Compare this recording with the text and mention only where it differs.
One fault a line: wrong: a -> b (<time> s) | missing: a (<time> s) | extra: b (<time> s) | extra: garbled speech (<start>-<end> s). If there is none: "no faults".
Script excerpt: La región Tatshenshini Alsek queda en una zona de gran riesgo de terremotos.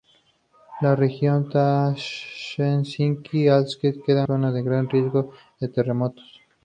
missing: en una (4.2 s)